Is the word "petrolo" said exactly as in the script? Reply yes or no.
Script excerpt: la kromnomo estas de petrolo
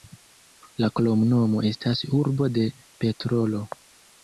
yes